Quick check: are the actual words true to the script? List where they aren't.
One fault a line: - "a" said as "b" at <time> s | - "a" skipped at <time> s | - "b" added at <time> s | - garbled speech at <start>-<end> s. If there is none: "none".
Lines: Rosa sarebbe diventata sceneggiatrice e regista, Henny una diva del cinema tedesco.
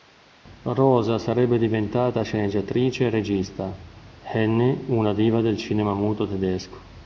- "muto" added at 5.9 s